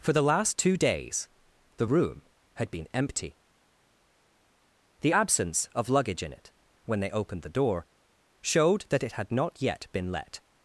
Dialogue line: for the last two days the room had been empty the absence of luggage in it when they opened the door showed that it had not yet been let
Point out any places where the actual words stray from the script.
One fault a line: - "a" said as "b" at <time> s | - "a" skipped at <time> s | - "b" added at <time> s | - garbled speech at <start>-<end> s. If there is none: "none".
none